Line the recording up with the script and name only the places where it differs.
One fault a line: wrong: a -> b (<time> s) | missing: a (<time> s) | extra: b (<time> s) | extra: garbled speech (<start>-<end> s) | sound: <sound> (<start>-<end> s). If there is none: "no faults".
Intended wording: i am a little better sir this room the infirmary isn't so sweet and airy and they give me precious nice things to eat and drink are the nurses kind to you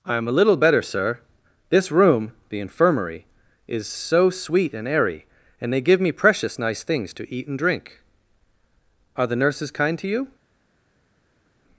wrong: isn't -> is (3.7 s)